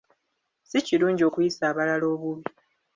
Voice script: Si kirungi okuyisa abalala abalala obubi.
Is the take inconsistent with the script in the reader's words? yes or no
yes